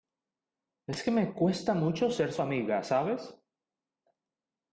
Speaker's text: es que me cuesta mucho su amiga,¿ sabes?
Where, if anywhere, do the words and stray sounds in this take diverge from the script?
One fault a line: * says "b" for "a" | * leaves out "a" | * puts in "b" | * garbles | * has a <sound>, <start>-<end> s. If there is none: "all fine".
* puts in "ser"